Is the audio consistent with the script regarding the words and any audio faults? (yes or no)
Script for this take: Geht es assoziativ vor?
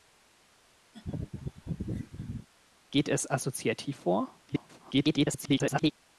no